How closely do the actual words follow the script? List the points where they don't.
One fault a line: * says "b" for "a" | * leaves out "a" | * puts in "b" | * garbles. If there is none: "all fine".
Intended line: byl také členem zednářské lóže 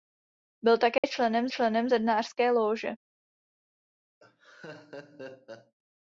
* puts in "členem"